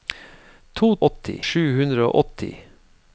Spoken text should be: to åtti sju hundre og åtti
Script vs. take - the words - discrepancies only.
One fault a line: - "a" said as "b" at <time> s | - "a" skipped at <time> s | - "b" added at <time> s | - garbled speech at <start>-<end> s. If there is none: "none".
none